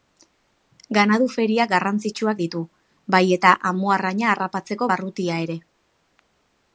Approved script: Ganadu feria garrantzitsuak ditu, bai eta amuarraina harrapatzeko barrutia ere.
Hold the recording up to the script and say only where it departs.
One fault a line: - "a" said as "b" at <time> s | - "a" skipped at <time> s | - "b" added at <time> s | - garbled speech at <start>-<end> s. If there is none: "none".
none